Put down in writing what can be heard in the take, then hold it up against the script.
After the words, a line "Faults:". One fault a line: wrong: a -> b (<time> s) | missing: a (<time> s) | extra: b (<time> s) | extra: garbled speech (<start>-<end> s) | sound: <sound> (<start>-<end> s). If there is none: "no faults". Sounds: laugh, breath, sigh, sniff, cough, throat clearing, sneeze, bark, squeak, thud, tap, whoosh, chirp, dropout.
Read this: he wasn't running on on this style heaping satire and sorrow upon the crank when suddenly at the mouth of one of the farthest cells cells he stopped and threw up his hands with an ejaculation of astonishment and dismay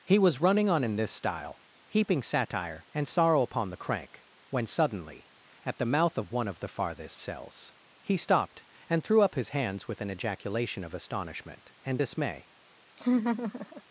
he was running on in this style heaping satire and sorrow upon the crank when suddenly at the mouth of one of the farthest cells he stopped and threw up his hands with an ejaculation of astonishment and dismay
Faults:
wrong: wasn't -> was (0.2 s)
wrong: on -> in (0.8 s)
missing: cells (7.7 s)
sound: laugh (13.0-13.8 s)